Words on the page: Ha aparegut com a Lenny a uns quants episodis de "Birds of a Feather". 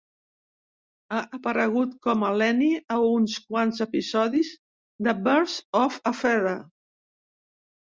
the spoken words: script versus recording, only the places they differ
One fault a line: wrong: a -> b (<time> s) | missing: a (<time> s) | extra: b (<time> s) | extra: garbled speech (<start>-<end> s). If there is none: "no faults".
no faults